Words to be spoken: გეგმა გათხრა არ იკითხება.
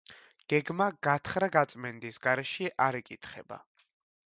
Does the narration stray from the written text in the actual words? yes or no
yes